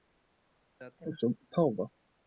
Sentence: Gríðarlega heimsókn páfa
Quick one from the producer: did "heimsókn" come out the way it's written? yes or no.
yes